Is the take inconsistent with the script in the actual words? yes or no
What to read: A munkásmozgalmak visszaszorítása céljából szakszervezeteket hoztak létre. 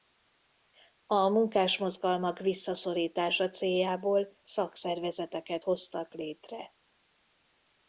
no